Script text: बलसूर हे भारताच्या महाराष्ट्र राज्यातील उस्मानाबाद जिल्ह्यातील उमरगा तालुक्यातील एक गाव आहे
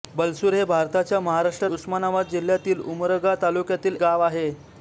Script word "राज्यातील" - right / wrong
wrong